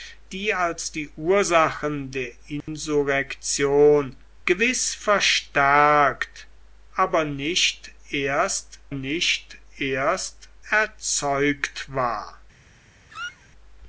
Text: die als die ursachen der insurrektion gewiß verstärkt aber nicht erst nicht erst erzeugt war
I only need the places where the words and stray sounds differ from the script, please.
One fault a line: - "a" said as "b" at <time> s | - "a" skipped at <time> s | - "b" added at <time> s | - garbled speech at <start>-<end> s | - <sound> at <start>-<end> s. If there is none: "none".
- dropout at 2.6-2.7 s
- squeak at 13.1-13.5 s